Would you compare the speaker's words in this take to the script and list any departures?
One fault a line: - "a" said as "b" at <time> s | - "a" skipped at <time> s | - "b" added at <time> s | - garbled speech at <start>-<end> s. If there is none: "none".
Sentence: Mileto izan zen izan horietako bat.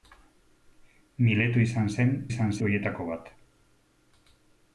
none